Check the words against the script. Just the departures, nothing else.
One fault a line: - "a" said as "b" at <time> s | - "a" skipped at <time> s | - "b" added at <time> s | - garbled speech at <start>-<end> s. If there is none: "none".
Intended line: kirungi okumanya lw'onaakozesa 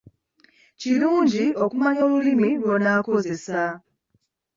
- "olulimi" added at 2.1 s